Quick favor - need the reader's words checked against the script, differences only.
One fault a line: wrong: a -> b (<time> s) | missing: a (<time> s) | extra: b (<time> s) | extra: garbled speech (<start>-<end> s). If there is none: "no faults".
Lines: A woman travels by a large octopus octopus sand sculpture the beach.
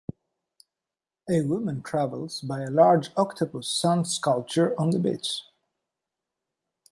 missing: octopus (3.7 s)
extra: on (4.8 s)